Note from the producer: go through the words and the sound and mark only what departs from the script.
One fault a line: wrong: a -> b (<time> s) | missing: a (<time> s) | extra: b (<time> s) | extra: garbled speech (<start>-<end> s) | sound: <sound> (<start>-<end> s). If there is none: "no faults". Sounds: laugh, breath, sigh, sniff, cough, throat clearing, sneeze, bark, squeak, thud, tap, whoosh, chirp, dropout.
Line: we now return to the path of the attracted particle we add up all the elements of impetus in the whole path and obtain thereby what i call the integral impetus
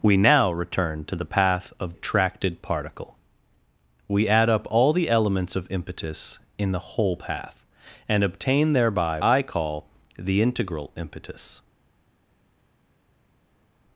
missing: the (1.9 s)
missing: what (9.2 s)